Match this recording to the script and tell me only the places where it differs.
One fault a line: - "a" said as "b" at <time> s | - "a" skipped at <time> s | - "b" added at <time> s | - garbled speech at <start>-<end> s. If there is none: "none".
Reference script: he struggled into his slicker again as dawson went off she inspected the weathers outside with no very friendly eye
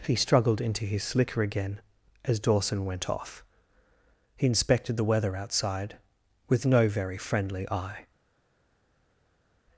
- "she" said as "he" at 4.3 s
- "weathers" said as "weather" at 5.0 s